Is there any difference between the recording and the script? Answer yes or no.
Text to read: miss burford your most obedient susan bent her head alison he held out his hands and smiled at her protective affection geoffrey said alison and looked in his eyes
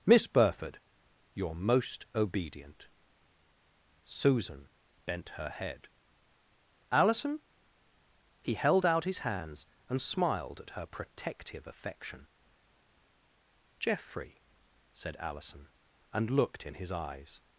no